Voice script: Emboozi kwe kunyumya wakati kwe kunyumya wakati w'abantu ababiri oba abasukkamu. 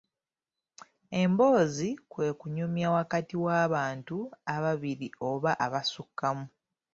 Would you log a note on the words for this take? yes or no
yes